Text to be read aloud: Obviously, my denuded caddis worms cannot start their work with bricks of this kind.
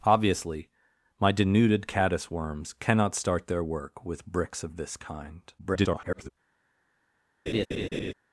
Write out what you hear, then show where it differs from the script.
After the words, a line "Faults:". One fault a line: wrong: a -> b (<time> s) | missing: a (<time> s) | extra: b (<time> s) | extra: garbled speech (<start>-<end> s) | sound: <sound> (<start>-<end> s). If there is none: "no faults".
Obviously, my denuded caddis worms cannot start their work with bricks of this kind. [garbled]
Faults:
extra: garbled speech (5.6-6.3 s)
sound: laugh (7.5-8.1 s)